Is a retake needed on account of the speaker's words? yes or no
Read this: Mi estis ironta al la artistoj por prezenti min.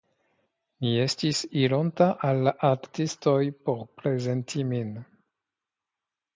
no